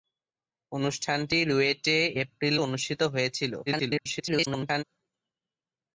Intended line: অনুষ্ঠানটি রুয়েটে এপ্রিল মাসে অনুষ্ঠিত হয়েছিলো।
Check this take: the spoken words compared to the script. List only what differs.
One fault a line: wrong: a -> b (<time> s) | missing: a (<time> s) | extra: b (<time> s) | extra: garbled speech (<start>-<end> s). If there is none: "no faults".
missing: মাসে (2.5 s)
extra: garbled speech (3.7-4.8 s)